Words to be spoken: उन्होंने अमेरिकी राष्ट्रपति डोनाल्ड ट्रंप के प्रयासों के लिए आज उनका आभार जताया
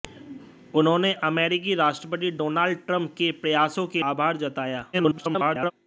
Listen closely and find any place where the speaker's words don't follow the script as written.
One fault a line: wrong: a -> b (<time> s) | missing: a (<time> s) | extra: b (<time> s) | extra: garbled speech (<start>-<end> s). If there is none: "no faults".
missing: लिए आज उनका (4.0 s)
extra: garbled speech (4.9-5.7 s)